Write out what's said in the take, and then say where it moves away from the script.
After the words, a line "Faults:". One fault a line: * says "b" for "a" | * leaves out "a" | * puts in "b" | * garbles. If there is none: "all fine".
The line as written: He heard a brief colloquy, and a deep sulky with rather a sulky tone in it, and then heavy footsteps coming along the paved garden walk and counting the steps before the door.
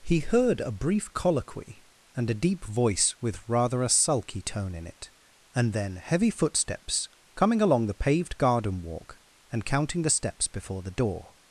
He heard a brief colloquy, and a deep voice with rather a sulky tone in it, and then heavy footsteps coming along the paved garden walk and counting the steps before the door.
Faults:
* says "voice" for "sulky"